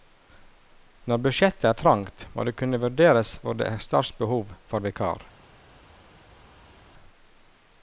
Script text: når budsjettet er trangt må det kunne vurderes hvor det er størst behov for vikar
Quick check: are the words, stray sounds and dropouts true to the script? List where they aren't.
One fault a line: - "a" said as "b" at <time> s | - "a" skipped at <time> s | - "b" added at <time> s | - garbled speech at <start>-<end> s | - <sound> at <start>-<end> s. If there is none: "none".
none